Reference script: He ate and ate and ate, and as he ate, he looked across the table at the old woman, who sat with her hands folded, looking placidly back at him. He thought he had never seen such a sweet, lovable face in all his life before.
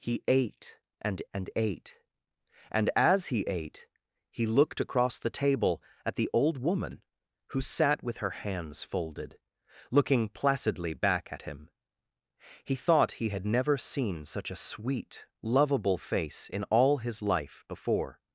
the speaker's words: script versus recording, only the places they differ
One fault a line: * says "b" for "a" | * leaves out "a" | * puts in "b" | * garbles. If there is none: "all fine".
* leaves out "ate"